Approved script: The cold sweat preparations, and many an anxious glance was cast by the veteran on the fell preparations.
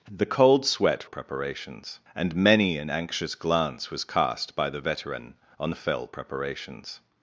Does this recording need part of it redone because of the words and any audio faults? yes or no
no